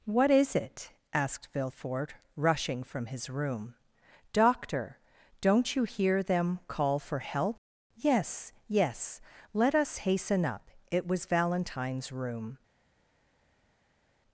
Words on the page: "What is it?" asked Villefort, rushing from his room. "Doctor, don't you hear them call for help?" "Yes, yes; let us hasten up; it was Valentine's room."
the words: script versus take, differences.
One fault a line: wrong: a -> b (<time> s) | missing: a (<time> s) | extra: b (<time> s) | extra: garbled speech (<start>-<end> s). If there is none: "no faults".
no faults